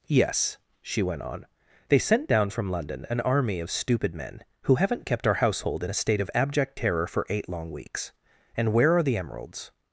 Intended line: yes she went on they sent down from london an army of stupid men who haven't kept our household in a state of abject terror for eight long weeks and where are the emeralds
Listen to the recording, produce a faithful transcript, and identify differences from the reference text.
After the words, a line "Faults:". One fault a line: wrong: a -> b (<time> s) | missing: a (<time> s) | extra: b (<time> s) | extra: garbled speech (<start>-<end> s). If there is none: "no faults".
yes she went on they sent down from london an army of stupid men who haven't kept our household in a state of abject terror for eight long weeks and where are the emeralds
Faults:
no faults